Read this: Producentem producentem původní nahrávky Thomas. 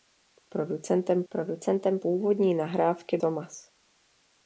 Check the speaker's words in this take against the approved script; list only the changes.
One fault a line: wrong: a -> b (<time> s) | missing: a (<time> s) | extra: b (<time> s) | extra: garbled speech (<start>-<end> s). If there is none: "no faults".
no faults